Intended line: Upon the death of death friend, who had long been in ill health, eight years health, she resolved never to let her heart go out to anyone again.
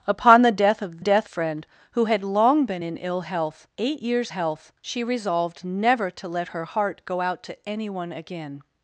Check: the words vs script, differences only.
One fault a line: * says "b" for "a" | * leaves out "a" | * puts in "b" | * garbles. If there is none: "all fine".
all fine